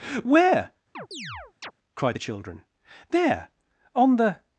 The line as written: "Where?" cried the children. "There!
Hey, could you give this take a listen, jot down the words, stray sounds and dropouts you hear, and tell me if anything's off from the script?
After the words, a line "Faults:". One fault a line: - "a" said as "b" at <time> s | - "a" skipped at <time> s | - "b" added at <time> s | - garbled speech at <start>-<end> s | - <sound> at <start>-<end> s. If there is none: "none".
"Where?" cried the children. "There! On the
Faults:
- chirp at 0.9-1.7 s
- "On the" added at 3.9 s